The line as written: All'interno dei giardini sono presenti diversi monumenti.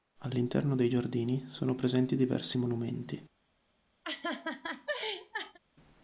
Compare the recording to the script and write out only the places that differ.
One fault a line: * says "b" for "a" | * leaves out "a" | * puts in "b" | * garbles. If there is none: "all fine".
all fine